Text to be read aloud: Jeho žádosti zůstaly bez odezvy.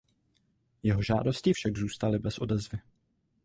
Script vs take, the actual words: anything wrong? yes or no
yes